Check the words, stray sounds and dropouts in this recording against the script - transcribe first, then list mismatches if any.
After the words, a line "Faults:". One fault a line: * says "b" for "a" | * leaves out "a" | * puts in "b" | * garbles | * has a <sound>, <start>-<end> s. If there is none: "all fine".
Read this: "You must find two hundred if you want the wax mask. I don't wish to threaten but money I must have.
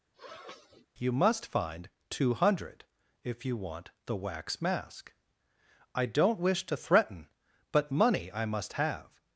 "You must find two hundred if you want the wax mask. I don't wish to threaten but money I must have.
Faults:
* has a sniff, 0.1-0.9 s